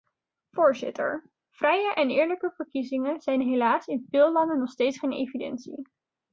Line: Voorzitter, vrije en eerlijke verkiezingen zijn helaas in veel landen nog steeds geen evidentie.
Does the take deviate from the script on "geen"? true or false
false